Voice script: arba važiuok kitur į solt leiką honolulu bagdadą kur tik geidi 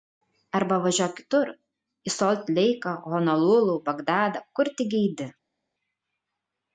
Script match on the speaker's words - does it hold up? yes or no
yes